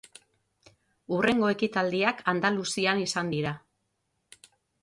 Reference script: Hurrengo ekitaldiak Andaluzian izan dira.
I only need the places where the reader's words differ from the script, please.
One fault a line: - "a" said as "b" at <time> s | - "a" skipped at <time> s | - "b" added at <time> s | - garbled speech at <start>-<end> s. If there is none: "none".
none